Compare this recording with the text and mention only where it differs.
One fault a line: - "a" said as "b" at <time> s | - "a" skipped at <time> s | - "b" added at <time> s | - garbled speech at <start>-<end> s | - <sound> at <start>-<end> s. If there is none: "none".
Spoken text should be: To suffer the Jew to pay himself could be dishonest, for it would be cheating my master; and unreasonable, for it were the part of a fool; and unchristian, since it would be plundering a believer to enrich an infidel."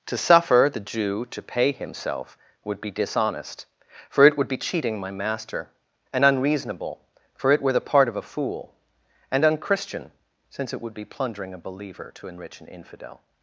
- "could" said as "would" at 2.6 s